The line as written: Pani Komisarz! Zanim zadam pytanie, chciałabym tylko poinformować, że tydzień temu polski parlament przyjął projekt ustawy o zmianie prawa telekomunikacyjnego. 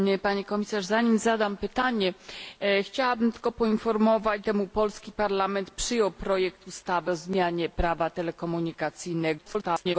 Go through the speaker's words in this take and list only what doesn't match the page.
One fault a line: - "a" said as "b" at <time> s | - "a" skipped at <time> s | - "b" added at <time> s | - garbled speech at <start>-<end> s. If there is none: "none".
- "że tydzień" skipped at 4.5 s
- garbled speech at 9.4-10.0 s